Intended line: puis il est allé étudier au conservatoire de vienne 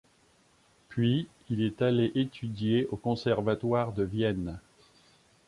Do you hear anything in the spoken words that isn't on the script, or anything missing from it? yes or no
no